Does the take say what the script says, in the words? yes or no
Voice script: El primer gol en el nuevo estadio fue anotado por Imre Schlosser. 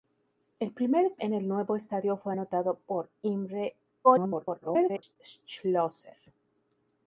no